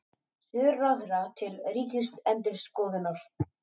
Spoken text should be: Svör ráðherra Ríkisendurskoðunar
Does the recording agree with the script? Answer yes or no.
no